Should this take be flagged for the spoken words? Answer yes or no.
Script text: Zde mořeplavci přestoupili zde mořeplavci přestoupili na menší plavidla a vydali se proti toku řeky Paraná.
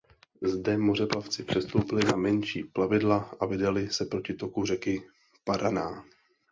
yes